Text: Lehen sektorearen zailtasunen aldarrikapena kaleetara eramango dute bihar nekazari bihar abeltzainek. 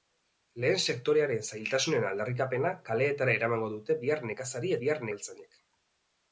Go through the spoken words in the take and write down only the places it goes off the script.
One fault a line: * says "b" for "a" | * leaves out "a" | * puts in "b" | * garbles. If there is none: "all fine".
all fine